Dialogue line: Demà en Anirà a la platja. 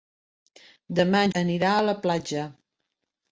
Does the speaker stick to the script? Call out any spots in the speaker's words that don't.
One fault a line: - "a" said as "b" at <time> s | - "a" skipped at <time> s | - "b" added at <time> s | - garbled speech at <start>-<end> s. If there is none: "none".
none